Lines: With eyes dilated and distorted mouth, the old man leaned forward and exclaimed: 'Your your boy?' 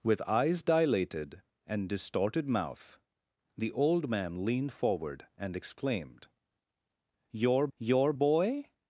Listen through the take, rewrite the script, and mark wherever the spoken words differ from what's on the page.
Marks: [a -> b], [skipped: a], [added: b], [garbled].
With eyes dilated and distorted mouth, the old man leaned forward and exclaimed: 'Your your boy?'